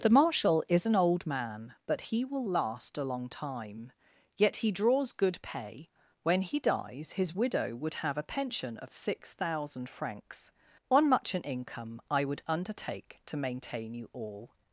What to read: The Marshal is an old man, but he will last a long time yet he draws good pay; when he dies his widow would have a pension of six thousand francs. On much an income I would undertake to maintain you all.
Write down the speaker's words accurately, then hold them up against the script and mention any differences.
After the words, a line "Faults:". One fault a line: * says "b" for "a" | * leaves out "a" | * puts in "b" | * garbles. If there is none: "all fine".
The Marshal is an old man, but he will last a long time yet he draws good pay; when he dies his widow would have a pension of six thousand francs. On much an income I would undertake to maintain you all.
Faults:
all fine